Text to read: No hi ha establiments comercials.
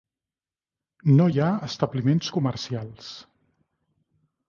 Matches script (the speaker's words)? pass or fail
pass